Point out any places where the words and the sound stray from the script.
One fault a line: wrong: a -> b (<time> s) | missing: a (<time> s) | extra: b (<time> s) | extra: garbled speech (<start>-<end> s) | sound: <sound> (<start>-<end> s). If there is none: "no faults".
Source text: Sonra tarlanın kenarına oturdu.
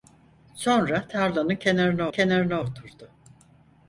extra: kenarına (2.1 s)